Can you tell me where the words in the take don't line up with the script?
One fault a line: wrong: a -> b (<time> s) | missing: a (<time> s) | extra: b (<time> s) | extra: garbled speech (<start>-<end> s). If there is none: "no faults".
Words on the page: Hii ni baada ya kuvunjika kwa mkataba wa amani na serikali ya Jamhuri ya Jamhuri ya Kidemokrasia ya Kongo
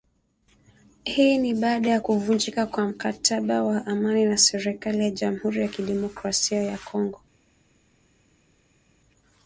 missing: Jamhuri ya (5.7 s)